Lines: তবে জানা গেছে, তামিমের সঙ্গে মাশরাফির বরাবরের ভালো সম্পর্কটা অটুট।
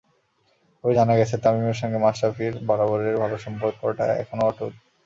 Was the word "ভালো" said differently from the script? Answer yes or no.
no